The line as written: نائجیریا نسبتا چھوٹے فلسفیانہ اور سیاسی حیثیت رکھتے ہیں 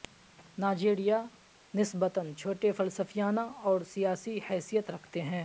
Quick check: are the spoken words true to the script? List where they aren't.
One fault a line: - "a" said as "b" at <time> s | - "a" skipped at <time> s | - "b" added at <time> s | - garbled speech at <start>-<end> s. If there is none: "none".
none